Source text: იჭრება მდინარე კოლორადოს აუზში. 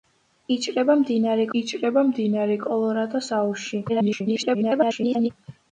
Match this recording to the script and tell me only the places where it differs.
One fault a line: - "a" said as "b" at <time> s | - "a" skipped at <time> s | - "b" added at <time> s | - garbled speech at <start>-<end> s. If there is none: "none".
- "იჭრება მდინარე" added at 1.6 s
- garbled speech at 3.9-5.3 s